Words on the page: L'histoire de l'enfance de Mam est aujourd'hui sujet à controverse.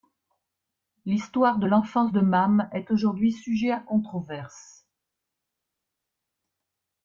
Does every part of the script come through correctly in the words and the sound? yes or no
yes